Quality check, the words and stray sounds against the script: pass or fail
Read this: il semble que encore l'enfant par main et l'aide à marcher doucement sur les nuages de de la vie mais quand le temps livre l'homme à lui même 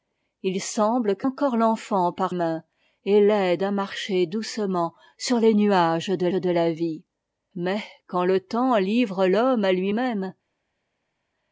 pass